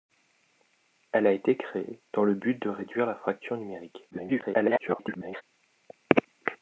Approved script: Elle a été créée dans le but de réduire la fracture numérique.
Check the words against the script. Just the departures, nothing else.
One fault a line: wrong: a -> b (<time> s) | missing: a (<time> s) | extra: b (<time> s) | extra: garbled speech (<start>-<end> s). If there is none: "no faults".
extra: garbled speech (4.1-5.4 s)